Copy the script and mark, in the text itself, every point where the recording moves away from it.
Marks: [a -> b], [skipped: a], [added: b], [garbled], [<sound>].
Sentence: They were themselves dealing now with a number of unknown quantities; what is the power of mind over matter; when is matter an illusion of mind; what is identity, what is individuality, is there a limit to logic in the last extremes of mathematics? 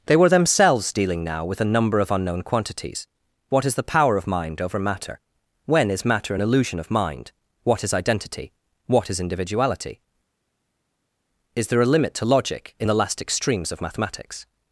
They were themselves dealing now with a number of unknown quantities; what is the power of mind over matter; when is matter an illusion of mind; what is identity, what is individuality, is there a limit to logic in the last extremes of mathematics?